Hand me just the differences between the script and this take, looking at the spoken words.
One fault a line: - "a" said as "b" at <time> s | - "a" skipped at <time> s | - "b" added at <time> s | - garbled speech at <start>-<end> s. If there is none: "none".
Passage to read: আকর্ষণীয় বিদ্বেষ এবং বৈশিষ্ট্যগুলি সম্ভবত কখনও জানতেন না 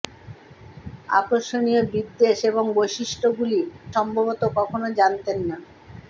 none